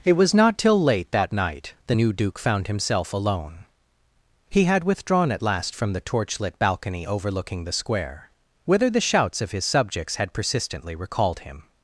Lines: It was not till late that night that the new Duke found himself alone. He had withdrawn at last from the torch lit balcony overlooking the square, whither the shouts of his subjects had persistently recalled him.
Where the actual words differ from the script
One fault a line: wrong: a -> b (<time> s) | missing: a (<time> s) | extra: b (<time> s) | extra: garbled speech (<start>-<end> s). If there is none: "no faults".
missing: that (1.7 s)